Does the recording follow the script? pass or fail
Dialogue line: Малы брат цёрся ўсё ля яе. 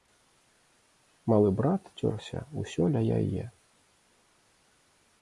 pass